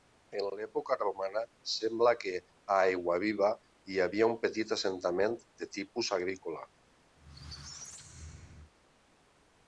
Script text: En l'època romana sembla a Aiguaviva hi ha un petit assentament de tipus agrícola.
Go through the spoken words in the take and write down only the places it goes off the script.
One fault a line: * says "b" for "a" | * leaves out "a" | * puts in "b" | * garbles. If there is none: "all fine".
* puts in "que"
* says "havia" for "ha"